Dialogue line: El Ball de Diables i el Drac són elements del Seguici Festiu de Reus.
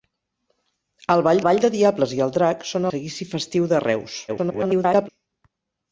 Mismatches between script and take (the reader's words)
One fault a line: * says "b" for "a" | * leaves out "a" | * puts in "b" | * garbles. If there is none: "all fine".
* puts in "Ball"
* leaves out "elements del"
* garbles